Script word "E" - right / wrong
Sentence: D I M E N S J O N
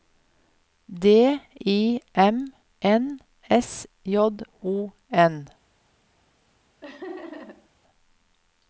wrong